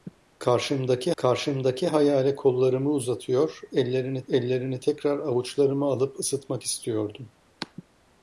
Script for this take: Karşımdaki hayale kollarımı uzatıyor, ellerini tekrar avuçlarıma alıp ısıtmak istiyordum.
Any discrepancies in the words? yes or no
yes